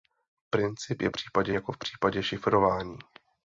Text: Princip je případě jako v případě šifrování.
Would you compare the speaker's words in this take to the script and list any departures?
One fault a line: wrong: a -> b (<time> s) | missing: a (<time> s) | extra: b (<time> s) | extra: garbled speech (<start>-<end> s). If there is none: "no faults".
no faults